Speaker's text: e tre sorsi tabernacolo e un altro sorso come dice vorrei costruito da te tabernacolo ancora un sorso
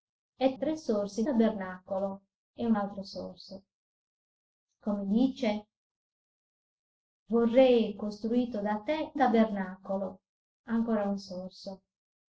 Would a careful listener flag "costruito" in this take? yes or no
no